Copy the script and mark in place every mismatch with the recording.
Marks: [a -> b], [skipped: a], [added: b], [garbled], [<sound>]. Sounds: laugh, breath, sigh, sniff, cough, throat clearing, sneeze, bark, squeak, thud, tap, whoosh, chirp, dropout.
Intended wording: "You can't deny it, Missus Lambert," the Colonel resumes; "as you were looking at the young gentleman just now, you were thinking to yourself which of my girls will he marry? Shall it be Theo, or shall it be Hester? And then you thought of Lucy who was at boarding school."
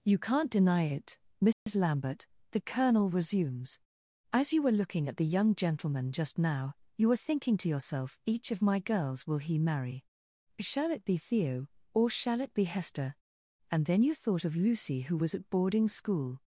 "You can't deny it, Missus [dropout] Lambert," the Colonel resumes; "as you were looking at the young gentleman just now, you were thinking to yourself [which -> each] of my girls will he marry? Shall it be Theo, or shall it be Hester? And then you thought of Lucy who was at boarding school."